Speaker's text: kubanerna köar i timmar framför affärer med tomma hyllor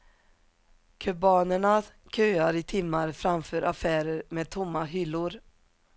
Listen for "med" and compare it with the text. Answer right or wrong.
right